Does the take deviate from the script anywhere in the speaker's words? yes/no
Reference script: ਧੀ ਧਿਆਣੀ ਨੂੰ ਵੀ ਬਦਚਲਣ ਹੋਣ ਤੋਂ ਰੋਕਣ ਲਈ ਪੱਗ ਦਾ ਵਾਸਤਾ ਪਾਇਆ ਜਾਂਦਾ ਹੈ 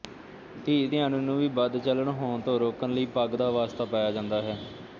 no